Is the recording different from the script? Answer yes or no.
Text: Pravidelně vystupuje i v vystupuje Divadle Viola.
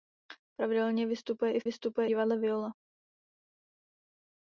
no